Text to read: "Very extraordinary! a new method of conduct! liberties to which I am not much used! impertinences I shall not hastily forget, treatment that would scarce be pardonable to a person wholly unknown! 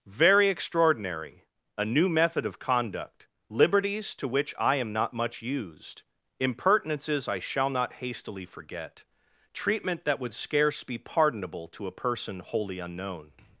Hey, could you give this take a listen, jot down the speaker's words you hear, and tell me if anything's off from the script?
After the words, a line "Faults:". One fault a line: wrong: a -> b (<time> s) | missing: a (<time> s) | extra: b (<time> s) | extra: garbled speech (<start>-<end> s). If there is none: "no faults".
"Very extraordinary! a new method of conduct! liberties to which I am not much used! impertinences I shall not hastily forget, treatment that would scarce be pardonable to a person wholly unknown!
Faults:
no faults